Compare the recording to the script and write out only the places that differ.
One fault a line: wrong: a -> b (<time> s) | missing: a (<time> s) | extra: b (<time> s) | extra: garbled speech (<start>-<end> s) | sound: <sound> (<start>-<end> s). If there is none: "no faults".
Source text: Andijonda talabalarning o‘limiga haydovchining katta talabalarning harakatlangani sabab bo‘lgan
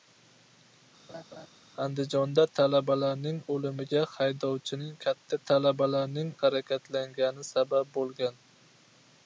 sound: laugh (1.1-1.5 s)